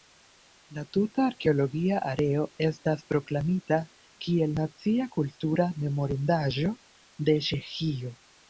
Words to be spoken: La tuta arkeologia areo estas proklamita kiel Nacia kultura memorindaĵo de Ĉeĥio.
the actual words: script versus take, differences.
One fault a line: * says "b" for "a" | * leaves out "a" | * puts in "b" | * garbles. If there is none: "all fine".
all fine